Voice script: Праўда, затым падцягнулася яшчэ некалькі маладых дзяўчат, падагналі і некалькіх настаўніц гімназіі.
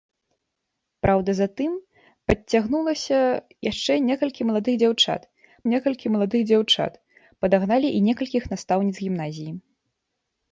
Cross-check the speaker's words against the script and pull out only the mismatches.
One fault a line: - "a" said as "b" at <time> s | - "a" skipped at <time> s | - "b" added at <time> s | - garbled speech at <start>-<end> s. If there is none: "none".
- "некалькі маладых дзяўчат" added at 5.7 s